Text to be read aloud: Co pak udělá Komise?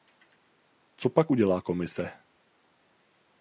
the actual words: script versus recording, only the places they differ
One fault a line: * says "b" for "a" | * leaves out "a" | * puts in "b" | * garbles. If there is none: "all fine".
all fine